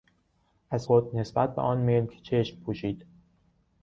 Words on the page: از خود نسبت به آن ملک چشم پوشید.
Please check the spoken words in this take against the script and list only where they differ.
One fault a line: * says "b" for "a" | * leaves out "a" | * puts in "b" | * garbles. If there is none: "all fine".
all fine